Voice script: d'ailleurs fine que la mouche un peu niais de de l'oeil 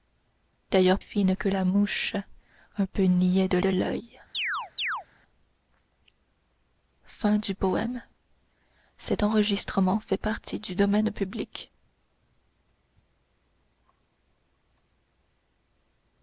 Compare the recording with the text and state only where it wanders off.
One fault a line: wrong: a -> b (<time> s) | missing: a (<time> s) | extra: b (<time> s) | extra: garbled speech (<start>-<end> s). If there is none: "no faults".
no faults